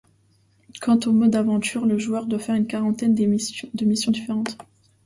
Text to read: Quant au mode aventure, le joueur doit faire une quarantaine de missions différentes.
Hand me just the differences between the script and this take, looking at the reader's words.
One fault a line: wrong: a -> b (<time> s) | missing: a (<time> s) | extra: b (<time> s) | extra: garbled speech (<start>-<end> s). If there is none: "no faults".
no faults